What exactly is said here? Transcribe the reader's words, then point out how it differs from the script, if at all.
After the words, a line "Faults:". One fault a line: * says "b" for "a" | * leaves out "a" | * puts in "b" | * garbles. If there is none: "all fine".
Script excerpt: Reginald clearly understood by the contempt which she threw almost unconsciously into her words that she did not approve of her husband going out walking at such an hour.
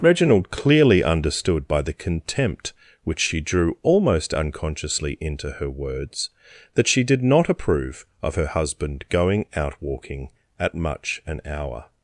Reginald clearly understood by the contempt which she drew almost unconsciously into her words that she did not approve of her husband going out walking at much an hour.
Faults:
* says "drew" for "threw"
* says "much" for "such"